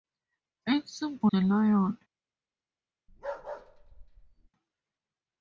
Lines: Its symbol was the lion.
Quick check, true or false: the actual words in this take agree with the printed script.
false